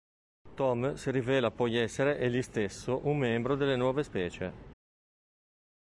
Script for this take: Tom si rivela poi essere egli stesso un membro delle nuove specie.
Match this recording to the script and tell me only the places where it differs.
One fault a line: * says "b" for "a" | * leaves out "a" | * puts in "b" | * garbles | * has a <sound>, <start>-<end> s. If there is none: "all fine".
all fine